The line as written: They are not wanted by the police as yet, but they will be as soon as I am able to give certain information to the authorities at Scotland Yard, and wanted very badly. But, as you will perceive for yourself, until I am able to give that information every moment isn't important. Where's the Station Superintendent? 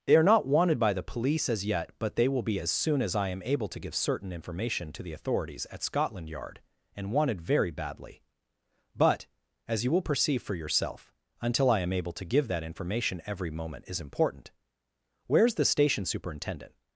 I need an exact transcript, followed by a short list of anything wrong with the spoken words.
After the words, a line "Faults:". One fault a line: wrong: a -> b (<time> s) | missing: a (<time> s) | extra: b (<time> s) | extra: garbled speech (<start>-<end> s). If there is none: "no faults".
They are not wanted by the police as yet, but they will be as soon as I am able to give certain information to the authorities at Scotland Yard, and wanted very badly. But, as you will perceive for yourself, until I am able to give that information every moment is important. Where's the Station Superintendent?
Faults:
wrong: isn't -> is (13.9 s)